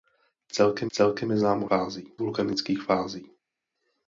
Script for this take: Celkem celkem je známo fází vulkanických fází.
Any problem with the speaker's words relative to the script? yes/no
no